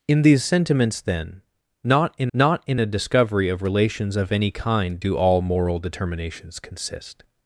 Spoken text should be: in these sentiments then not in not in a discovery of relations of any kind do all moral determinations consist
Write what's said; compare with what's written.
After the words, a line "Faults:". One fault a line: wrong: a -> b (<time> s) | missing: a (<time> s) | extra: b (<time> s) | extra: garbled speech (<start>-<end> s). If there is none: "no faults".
in these sentiments then not in not in a discovery of relations of any kind do all moral determinations consist
Faults:
no faults